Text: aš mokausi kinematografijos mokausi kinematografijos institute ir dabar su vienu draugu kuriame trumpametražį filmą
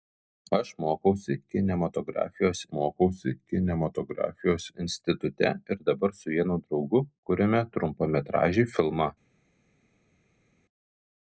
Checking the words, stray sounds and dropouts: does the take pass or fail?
pass